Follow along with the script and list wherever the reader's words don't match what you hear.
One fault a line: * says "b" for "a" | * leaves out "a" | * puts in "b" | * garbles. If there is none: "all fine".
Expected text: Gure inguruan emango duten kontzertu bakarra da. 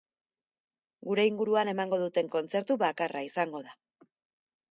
* puts in "izango"